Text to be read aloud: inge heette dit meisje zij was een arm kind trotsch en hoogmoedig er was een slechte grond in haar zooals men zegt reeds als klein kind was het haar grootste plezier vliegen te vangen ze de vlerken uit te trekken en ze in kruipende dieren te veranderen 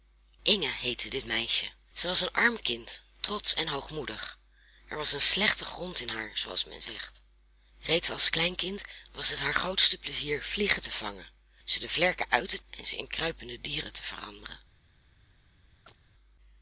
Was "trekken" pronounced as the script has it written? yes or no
no